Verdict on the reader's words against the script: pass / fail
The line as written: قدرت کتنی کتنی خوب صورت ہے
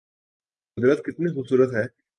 fail